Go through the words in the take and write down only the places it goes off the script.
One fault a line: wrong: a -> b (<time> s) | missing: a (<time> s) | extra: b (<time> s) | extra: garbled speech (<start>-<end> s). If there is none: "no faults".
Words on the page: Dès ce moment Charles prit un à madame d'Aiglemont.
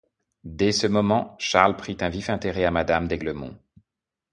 extra: vif intérêt (2.1 s)